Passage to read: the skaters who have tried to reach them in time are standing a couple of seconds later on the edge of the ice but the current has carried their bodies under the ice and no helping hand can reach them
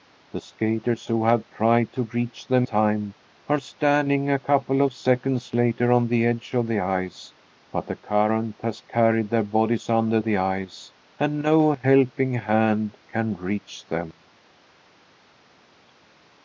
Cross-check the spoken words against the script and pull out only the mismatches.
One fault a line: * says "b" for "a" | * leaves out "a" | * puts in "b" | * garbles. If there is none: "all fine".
* leaves out "in"